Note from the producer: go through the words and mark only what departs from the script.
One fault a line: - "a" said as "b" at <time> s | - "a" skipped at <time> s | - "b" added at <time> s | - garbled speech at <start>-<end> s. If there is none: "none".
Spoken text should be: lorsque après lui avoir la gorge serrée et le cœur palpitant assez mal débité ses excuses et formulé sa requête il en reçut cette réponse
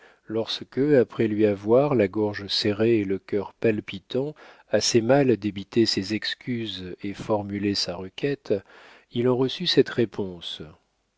none